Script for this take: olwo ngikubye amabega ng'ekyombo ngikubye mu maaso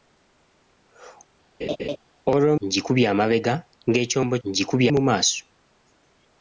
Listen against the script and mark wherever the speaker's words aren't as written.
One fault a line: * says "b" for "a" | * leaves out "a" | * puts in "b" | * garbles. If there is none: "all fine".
all fine